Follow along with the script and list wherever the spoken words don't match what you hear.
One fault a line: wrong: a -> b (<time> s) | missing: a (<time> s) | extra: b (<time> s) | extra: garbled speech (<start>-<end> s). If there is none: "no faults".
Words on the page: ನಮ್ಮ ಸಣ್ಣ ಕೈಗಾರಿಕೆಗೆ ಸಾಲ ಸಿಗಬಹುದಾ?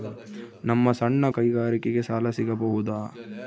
no faults